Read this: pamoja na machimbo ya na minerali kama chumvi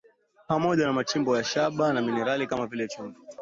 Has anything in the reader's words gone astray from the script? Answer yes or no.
yes